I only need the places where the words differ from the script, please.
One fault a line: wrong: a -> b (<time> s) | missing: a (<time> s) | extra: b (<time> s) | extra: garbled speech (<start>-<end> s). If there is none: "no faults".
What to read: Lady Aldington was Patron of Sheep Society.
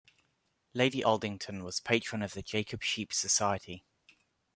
extra: the Jacob (2.3 s)